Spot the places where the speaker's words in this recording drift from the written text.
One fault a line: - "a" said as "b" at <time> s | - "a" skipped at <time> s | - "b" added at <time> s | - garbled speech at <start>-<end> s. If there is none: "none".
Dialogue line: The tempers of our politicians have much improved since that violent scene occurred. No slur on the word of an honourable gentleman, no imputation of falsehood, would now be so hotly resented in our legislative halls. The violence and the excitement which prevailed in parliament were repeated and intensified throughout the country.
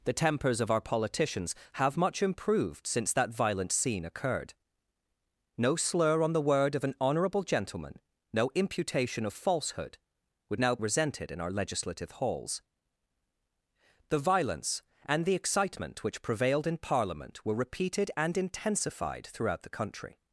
- "be so hotly" skipped at 10.8 s